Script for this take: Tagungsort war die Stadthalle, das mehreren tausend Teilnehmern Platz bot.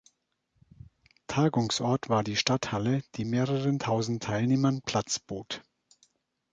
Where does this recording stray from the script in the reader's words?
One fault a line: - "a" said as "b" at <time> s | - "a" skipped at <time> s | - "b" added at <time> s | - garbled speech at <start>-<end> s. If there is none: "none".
- "das" said as "die" at 3.1 s